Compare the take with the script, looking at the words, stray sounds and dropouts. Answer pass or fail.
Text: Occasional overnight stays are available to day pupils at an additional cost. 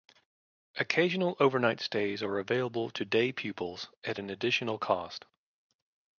pass